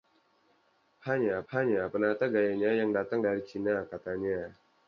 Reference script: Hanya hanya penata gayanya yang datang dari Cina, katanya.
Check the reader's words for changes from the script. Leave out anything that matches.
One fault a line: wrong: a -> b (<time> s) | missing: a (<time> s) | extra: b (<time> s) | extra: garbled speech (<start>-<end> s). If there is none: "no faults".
no faults